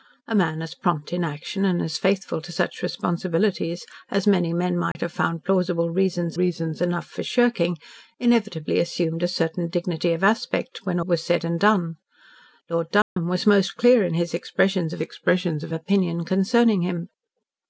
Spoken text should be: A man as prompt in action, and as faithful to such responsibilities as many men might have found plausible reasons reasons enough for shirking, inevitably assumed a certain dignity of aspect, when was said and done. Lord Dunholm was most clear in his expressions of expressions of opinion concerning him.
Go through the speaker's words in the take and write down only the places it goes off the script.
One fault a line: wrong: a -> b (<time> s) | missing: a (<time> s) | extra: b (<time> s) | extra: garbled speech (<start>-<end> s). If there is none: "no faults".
no faults